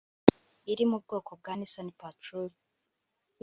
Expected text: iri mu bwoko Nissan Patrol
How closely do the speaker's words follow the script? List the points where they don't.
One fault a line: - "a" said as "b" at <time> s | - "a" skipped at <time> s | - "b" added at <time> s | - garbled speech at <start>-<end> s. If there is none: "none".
- "bwa" added at 1.4 s